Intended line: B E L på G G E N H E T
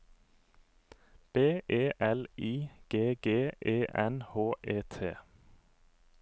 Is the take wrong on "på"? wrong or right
wrong